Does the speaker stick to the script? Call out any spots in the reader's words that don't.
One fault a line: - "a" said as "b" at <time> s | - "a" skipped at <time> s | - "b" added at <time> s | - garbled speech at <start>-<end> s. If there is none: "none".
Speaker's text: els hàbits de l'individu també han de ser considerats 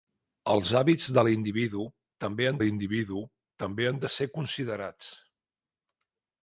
- "l'individu també han" added at 2.6 s